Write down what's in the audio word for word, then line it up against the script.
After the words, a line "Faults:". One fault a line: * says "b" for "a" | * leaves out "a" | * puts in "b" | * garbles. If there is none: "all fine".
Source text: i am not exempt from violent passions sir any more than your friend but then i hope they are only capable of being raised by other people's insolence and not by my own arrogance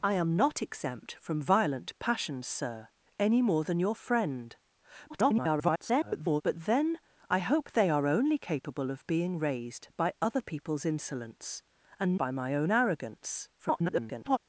i am not exempt from violent passions sir any more than your friend [garbled] but then i hope they are only capable of being raised by other people's insolence and by my own arrogance [garbled]
Faults:
* garbles
* leaves out "not"
* garbles